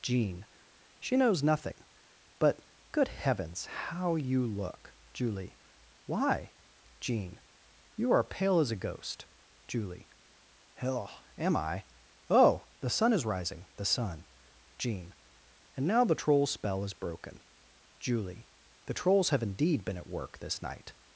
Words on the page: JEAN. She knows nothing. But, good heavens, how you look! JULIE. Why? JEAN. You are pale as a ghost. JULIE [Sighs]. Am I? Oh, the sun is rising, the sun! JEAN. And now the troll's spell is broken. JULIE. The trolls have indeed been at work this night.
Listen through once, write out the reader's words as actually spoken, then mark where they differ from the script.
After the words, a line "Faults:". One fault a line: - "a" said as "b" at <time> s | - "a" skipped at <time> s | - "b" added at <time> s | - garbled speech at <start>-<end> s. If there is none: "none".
JEAN. She knows nothing. But, good heavens, how you look! JULIE. Why? JEAN. You are pale as a ghost. JULIE [Hell]. Am I? Oh, the sun is rising, the sun! JEAN. And now the troll's spell is broken. JULIE. The trolls have indeed been at work this night.
Faults:
- "Sighs" said as "Hell" at 10.7 s